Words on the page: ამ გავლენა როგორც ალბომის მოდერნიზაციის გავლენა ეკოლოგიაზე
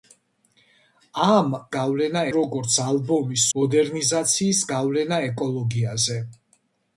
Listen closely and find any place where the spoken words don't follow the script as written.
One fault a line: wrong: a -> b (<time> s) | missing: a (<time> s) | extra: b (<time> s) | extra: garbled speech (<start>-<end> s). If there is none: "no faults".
no faults